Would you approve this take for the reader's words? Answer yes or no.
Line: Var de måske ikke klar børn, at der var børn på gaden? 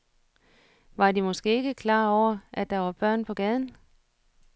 no